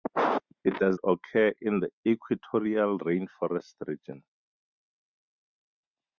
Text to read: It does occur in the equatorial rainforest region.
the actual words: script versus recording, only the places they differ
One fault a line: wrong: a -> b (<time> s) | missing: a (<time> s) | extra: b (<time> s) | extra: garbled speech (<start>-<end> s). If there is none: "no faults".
no faults